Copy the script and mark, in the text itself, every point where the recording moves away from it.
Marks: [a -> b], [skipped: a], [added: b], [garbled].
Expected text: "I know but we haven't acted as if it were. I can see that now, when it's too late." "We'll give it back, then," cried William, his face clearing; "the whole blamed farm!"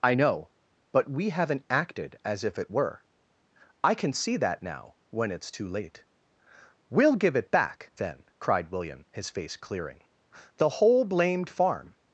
"I know but we haven't acted as if it were. I can see that now, when it's too late." "We'll give it back, then," cried William, his face clearing; "the whole blamed farm!"